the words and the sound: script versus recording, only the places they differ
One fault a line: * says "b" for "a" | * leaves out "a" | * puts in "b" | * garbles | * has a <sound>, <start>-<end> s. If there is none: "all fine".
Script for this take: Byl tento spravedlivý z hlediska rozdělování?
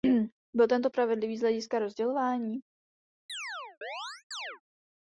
* has a chirp, 3.3-4.6 s